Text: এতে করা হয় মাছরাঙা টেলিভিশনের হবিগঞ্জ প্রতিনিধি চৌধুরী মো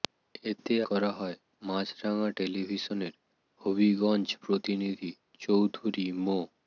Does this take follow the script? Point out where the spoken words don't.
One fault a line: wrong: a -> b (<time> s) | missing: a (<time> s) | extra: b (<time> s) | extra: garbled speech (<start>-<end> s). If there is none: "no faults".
no faults